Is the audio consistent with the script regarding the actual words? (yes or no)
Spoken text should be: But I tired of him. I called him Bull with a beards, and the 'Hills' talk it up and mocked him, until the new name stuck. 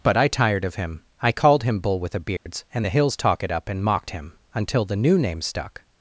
yes